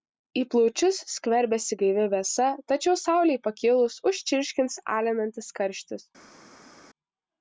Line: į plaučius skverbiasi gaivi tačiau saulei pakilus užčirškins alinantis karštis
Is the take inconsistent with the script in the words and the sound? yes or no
yes